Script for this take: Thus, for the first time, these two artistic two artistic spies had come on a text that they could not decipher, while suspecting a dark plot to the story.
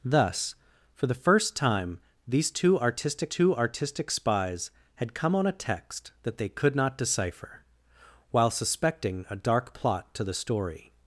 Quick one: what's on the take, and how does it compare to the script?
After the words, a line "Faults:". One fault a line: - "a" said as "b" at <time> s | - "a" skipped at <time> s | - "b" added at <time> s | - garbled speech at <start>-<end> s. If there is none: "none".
Thus, for the first time, these two artistic two artistic spies had come on a text that they could not decipher, while suspecting a dark plot to the story.
Faults:
none